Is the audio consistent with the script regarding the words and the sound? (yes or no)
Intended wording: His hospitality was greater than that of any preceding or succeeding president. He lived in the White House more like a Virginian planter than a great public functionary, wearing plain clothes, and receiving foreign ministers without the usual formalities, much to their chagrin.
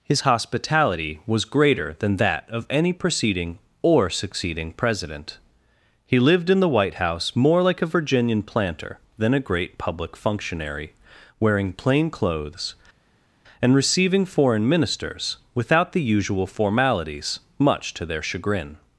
yes